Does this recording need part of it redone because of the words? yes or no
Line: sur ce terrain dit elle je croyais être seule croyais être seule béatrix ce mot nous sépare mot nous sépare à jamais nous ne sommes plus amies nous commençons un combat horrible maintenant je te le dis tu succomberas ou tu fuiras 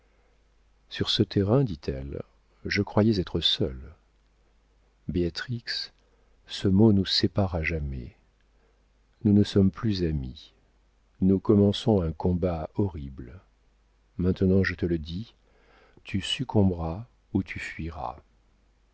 yes